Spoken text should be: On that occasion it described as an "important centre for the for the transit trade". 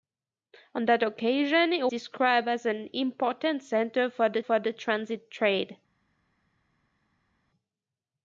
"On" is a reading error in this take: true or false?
false